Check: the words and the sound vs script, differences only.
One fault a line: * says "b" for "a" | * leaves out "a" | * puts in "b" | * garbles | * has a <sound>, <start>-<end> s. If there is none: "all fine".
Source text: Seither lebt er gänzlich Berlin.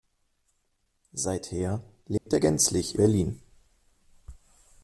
* has a dropout, 2.2-2.3 s